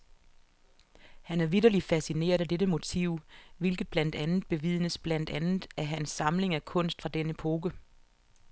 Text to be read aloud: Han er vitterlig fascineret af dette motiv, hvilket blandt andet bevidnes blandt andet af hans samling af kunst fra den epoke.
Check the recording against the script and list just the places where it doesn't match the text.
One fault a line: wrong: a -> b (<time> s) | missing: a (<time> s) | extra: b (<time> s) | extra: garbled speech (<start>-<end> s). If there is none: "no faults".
no faults